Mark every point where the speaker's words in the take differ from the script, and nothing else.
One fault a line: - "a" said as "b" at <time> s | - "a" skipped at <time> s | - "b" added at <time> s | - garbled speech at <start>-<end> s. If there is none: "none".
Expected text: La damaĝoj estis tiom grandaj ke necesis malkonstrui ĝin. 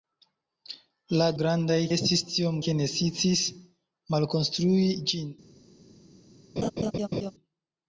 - "damaĝoj" said as "grandaj" at 1.4 s
- "grandaj" skipped at 2.6 s